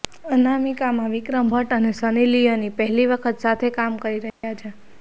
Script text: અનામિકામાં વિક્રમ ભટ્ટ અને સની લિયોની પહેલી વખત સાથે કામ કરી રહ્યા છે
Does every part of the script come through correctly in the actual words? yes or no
yes